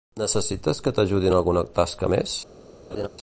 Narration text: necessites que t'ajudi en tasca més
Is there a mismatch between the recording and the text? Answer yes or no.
yes